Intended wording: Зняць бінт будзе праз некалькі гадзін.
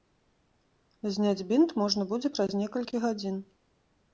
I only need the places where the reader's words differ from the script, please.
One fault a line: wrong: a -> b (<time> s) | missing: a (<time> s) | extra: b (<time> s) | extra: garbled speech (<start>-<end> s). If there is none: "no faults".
extra: можна (1.8 s)